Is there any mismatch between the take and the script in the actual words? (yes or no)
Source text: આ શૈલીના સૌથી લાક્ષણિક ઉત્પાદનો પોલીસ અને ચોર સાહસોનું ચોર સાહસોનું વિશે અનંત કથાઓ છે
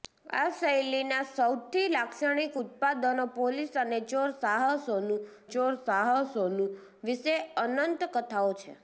no